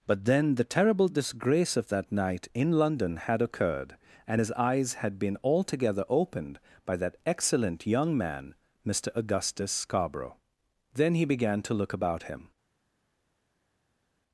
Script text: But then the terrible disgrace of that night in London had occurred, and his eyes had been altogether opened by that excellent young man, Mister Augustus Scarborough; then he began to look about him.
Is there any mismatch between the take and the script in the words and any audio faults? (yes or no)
no